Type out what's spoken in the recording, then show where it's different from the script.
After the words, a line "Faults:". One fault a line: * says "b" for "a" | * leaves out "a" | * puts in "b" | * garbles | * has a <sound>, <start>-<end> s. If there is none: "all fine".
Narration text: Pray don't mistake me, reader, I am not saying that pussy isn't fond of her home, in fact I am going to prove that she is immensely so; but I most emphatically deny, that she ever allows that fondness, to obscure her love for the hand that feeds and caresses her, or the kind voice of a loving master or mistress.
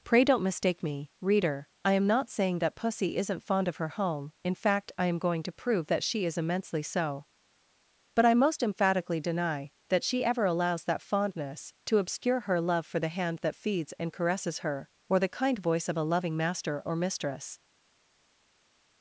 Pray don't mistake me, reader, I am not saying that pussy isn't fond of her home, in fact I am going to prove that she is immensely so; but I most emphatically deny, that she ever allows that fondness, to obscure her love for the hand that feeds and caresses her, or the kind voice of a loving master or mistress.
Faults:
all fine